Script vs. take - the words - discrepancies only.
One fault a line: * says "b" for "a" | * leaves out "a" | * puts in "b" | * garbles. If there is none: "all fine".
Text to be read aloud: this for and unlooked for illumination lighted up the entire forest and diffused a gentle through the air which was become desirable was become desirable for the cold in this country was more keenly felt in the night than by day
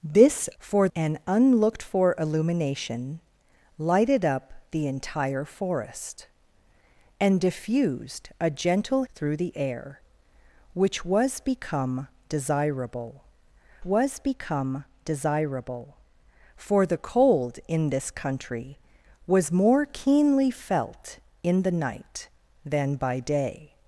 all fine